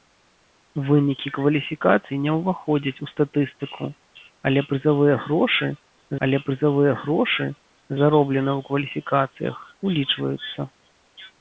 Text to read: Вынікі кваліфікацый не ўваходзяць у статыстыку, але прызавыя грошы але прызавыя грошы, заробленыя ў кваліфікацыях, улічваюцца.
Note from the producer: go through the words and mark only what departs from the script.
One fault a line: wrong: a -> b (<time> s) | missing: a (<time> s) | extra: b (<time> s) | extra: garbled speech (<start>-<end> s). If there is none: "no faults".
no faults